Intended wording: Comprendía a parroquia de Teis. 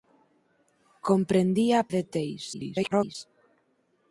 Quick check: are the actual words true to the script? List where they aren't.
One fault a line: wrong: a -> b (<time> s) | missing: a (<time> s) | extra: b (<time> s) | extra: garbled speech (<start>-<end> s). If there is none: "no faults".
missing: parroquia (1.9 s)
extra: garbled speech (2.5-3.2 s)